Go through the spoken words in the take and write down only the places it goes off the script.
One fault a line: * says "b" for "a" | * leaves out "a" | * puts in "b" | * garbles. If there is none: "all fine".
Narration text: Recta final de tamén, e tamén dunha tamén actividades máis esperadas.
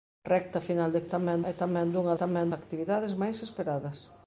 all fine